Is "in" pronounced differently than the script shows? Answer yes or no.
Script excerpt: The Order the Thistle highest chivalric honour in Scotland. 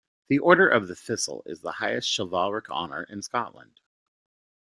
no